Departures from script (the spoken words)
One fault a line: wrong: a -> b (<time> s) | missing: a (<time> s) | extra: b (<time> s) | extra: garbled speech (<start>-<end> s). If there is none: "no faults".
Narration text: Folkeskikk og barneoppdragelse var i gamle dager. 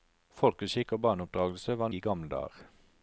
no faults